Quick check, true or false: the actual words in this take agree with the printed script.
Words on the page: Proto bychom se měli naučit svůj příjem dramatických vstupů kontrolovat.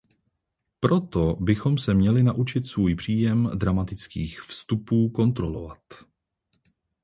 true